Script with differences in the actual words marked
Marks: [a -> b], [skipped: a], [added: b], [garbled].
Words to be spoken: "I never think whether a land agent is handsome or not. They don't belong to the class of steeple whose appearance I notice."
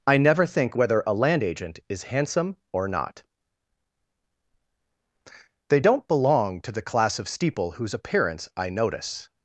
"I never think whether a land agent is handsome or not. They don't belong to the class of steeple whose appearance I notice."